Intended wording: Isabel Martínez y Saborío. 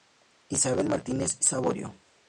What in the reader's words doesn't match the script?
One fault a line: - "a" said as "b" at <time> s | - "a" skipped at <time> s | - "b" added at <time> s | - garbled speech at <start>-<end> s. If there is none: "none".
- "y" skipped at 1.4 s